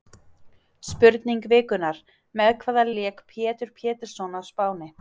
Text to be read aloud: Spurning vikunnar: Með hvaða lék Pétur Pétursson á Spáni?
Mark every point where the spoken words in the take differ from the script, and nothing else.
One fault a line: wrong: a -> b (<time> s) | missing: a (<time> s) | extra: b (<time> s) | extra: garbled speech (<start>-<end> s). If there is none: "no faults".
no faults